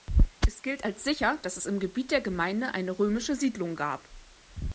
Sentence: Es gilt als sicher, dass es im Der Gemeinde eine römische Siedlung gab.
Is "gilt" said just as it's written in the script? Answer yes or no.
yes